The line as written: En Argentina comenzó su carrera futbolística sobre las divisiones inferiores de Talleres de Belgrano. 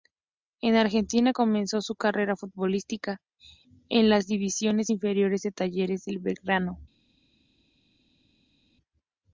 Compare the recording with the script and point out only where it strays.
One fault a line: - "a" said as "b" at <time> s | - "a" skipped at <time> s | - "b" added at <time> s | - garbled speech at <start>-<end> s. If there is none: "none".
- "sobre" said as "en" at 3.9 s